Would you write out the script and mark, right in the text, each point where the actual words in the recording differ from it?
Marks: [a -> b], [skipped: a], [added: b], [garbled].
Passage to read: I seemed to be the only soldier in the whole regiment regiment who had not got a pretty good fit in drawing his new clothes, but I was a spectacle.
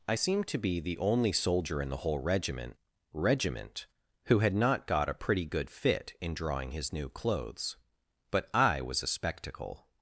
I seemed to be the only soldier in the whole regiment regiment who had not got a pretty good fit in drawing his new clothes, but I was a spectacle.